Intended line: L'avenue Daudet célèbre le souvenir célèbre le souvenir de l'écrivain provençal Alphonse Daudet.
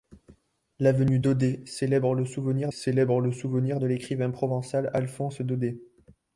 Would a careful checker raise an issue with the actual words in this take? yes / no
no